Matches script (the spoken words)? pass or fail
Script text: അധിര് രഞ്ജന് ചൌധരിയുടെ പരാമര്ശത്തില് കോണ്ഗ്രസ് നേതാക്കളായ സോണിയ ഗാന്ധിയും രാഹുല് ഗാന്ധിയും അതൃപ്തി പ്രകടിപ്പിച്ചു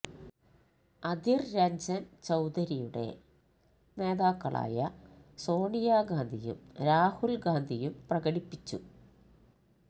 fail